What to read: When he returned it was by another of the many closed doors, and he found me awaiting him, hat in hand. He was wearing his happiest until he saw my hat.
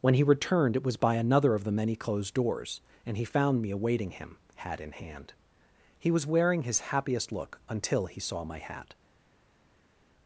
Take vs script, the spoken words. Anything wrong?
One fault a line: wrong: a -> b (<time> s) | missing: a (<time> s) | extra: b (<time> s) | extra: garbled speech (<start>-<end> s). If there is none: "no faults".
extra: look (7.3 s)